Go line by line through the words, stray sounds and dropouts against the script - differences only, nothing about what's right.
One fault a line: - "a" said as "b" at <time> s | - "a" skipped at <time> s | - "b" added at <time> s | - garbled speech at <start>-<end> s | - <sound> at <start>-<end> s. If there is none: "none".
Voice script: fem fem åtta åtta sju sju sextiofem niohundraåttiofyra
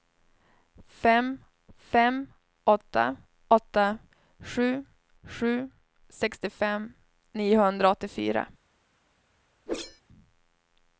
- whoosh at 9.7-10.0 s